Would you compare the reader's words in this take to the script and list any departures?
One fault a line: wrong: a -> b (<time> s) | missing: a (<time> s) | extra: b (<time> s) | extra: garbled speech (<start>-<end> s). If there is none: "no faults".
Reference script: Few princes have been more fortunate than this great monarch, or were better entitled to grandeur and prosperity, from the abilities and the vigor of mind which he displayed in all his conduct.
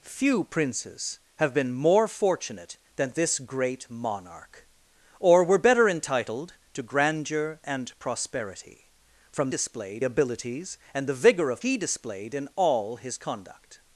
wrong: the -> displayed (9.5 s)
missing: mind which (11.6 s)